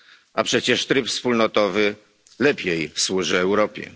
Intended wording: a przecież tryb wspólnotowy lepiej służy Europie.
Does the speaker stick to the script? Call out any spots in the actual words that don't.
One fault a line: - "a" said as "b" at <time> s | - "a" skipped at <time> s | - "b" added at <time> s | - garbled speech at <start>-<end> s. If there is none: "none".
none